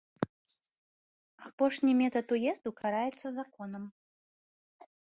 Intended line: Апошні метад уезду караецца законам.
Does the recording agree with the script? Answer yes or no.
yes